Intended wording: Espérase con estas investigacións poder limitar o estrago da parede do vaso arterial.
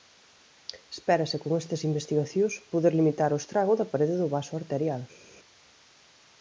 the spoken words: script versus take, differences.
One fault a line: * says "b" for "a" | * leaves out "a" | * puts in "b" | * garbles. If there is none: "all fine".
all fine